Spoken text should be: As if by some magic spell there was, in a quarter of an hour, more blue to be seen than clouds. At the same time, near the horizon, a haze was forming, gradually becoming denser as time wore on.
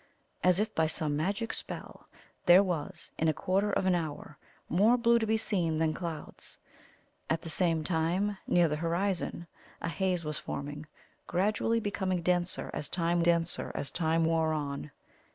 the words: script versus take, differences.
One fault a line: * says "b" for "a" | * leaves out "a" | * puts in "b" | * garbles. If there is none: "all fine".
* puts in "denser as time"